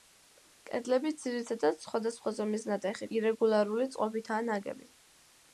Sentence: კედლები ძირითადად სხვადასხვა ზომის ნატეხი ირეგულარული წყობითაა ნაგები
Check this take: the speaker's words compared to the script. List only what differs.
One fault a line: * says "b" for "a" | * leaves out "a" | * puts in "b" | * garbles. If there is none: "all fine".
all fine